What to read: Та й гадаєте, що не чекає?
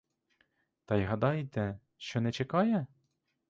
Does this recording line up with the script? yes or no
yes